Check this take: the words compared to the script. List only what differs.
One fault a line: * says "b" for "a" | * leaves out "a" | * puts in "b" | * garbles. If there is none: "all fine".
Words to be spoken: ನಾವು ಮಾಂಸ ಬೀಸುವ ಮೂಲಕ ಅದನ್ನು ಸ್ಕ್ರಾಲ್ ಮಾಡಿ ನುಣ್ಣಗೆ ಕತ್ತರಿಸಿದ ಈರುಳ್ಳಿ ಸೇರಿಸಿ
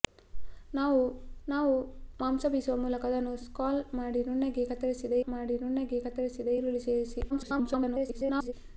* puts in "ನಾವು"
* puts in "ಮಾಡಿ ನುಣ್ಣಗೆ ಕತ್ತರಿಸಿದ"
* garbles